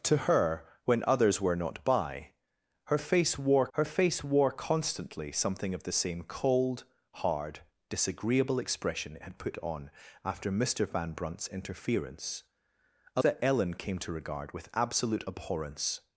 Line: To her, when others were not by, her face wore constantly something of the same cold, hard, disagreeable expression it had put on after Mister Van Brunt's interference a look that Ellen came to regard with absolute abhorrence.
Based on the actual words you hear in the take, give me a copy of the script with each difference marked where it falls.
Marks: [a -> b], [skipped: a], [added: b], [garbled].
To her, when others were not by, her face wore [added: her face wore] constantly something of the same cold, hard, disagreeable expression it had put on after Mister Van Brunt's interference a [skipped: look] that Ellen came to regard with absolute abhorrence.